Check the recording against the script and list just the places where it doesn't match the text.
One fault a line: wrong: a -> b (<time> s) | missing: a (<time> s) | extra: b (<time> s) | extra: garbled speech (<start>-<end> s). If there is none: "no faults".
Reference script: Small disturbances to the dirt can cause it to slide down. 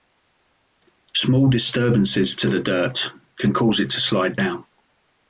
no faults